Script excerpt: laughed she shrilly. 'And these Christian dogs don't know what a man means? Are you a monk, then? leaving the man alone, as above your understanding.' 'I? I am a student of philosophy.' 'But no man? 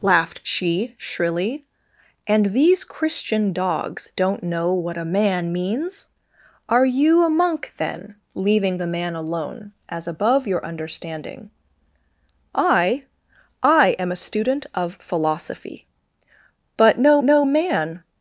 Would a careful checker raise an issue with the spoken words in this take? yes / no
yes